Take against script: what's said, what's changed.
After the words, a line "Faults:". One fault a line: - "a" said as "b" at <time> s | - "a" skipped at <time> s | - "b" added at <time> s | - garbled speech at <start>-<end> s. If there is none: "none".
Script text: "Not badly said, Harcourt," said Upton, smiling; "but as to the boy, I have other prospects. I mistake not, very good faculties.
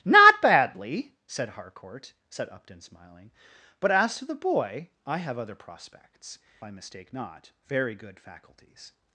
"Not badly said, Harcourt," said Upton, smiling; "but as to the boy, I have other prospects. I mistake not, very good faculties.
Faults:
none